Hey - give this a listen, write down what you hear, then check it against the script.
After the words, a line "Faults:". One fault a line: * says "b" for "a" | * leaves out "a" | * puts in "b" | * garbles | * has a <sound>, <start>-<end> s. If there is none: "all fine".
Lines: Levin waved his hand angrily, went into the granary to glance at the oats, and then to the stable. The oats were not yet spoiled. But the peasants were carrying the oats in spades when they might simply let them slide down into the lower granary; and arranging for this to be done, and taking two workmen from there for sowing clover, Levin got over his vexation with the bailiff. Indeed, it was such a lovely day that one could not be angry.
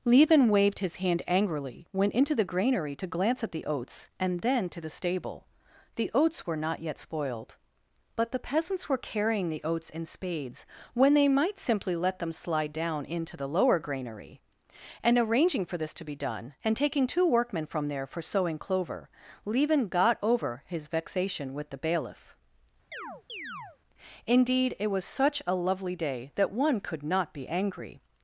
Levin waved his hand angrily, went into the granary to glance at the oats, and then to the stable. The oats were not yet spoiled. But the peasants were carrying the oats in spades when they might simply let them slide down into the lower granary; and arranging for this to be done, and taking two workmen from there for sowing clover, Levin got over his vexation with the bailiff. Indeed, it was such a lovely day that one could not be angry.
Faults:
* has a chirp, 22.9-23.8 s